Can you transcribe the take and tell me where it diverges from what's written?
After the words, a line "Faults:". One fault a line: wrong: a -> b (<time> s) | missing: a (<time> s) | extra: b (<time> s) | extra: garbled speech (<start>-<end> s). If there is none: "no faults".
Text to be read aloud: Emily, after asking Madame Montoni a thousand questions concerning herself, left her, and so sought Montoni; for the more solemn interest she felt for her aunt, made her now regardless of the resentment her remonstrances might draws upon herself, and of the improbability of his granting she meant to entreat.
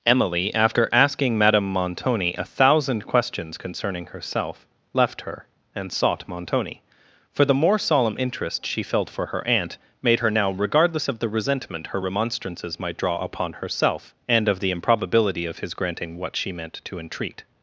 Emily, after asking Madame Montoni a thousand questions concerning herself, left her, and sought Montoni; for the more solemn interest she felt for her aunt, made her now regardless of the resentment her remonstrances might draw upon herself, and of the improbability of his granting what she meant to entreat.
Faults:
missing: so (5.9 s)
wrong: draws -> draw (13.0 s)
extra: what (16.2 s)